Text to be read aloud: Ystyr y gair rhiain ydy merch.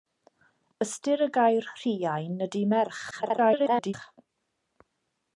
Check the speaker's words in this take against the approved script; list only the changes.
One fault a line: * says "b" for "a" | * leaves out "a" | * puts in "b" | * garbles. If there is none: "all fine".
* garbles